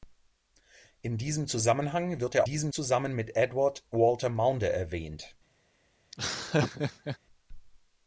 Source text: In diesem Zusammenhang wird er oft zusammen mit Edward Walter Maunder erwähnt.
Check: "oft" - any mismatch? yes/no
yes